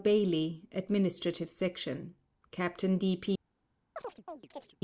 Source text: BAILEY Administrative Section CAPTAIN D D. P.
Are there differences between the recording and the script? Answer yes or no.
yes